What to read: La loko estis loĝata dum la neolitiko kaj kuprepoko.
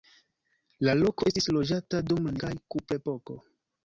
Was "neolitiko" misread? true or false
true